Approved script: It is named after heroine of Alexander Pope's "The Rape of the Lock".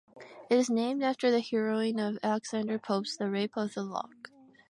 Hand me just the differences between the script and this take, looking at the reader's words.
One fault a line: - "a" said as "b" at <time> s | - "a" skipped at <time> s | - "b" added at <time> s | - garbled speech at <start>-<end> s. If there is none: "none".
- "the" added at 1.3 s